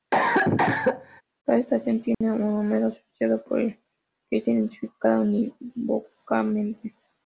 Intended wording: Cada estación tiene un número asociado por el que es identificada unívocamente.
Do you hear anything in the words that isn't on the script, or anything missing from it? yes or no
no